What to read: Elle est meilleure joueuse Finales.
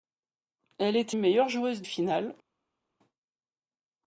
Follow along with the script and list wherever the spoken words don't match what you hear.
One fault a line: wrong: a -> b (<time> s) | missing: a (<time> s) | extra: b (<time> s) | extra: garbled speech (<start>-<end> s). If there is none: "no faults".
no faults